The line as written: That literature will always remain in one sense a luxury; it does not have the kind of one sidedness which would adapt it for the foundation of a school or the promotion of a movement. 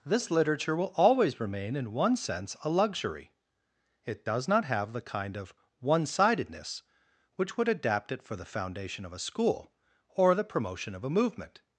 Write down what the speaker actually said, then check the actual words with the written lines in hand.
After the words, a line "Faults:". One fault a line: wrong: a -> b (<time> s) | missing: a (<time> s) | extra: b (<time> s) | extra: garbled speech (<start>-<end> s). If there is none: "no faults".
This literature will always remain in one sense a luxury; it does not have the kind of one sidedness which would adapt it for the foundation of a school or the promotion of a movement.
Faults:
wrong: That -> This (0.1 s)